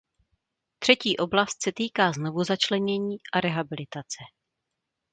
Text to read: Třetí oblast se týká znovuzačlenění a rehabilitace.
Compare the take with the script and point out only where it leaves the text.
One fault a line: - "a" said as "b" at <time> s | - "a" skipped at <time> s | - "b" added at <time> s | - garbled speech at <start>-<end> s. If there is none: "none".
none